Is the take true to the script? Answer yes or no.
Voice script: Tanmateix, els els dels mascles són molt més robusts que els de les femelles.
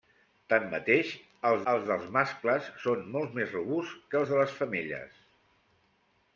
yes